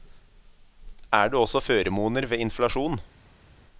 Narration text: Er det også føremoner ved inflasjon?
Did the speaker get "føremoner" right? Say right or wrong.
right